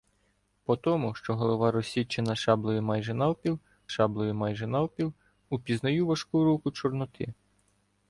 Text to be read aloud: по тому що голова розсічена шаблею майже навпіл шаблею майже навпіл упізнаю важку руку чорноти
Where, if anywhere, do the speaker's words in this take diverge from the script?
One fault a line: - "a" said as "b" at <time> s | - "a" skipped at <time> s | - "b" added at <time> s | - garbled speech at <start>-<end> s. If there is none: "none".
none